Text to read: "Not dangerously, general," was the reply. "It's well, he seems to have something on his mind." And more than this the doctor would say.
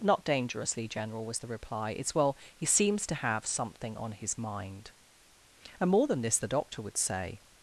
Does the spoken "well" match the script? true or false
true